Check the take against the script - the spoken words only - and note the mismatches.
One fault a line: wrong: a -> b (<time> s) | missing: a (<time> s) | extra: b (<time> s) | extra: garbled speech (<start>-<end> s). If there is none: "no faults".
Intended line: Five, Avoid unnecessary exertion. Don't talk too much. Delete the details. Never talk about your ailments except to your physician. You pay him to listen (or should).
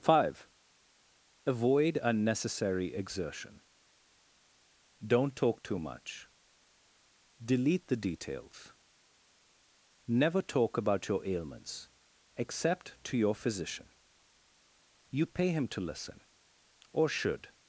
no faults